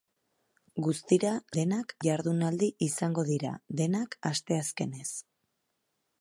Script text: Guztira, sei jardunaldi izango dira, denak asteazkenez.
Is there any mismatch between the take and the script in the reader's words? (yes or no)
yes